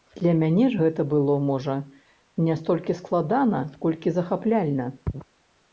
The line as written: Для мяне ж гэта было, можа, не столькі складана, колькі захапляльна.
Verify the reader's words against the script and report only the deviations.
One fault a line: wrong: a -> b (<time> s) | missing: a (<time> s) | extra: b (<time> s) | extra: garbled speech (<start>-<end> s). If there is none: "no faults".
no faults